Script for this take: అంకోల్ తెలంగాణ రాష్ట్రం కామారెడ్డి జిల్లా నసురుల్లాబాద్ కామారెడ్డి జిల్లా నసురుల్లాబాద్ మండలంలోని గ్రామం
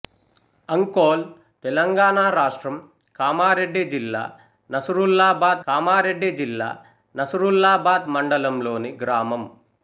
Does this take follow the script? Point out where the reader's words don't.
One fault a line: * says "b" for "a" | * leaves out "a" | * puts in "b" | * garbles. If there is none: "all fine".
all fine